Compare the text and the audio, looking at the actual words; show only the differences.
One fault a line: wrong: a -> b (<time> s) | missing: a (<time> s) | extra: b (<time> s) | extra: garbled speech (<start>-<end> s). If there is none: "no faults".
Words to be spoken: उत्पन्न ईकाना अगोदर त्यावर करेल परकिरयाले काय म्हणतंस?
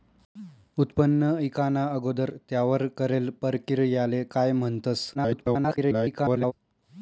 extra: garbled speech (5.1-6.5 s)